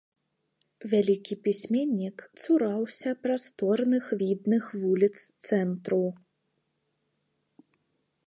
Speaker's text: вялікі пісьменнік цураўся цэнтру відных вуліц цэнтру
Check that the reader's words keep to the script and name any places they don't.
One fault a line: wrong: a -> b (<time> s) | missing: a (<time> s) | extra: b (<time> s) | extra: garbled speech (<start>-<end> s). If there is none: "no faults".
wrong: цэнтру -> прасторных (3.3 s)